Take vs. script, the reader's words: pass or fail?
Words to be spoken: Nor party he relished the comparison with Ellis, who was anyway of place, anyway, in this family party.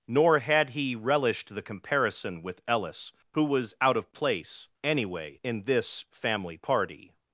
fail